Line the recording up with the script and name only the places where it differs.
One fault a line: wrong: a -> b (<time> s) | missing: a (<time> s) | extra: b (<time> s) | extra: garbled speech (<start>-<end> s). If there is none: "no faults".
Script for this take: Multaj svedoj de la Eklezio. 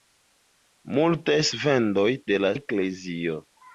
no faults